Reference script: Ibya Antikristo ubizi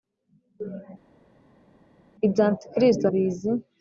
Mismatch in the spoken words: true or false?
false